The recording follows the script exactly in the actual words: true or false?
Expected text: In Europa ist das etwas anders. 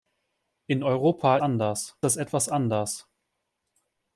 false